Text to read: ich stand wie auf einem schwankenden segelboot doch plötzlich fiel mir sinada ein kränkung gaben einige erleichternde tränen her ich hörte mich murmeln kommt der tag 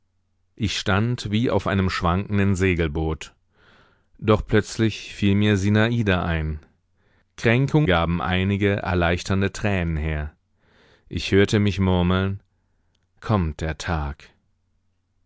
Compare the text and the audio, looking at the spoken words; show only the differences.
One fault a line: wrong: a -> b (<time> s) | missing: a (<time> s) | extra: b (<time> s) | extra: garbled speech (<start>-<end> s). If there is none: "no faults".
no faults